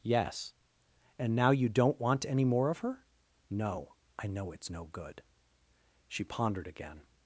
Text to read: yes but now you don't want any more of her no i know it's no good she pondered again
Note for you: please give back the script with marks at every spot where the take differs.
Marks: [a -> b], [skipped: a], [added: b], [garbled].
yes [but -> and] now you don't want any more of her no i know it's no good she pondered again